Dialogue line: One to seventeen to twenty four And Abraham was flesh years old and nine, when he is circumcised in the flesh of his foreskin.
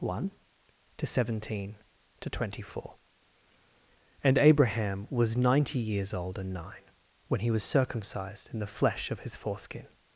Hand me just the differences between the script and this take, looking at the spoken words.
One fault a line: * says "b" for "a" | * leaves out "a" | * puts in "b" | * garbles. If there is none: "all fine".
* says "ninety" for "flesh"
* says "was" for "is"